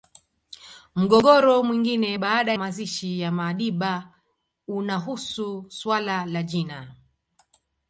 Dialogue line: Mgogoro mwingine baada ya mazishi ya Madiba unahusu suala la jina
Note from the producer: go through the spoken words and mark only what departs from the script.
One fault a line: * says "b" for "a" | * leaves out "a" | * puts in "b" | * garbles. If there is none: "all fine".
* leaves out "ya"